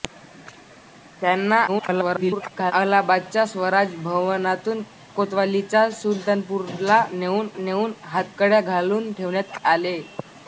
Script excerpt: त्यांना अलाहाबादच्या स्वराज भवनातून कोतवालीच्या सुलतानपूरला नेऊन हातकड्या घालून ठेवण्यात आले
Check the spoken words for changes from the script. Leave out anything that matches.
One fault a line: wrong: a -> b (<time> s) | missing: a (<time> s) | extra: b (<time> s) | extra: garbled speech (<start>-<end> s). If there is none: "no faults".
extra: garbled speech (1.7-2.7 s)
extra: नेऊन (7.6 s)